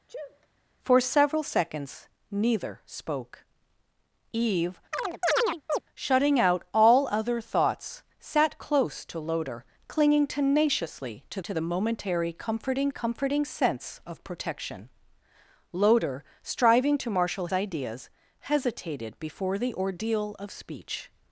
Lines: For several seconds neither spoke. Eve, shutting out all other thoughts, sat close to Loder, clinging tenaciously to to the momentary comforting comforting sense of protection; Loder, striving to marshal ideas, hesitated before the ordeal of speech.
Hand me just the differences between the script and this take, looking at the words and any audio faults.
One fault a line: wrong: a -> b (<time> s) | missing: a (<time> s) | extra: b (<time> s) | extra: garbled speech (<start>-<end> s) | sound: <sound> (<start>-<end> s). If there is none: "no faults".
sound: sneeze (0.1-0.5 s)
sound: chirp (4.9-5.8 s)